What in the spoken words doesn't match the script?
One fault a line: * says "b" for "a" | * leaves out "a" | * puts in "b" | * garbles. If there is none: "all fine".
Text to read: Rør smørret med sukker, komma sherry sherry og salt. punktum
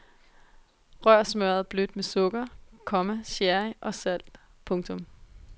* puts in "blødt"
* leaves out "sherry"